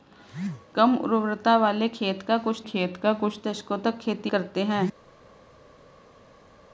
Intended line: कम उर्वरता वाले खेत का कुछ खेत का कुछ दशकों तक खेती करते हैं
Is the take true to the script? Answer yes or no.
yes